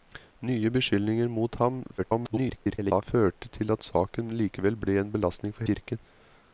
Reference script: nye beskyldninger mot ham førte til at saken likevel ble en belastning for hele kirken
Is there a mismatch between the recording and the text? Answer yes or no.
yes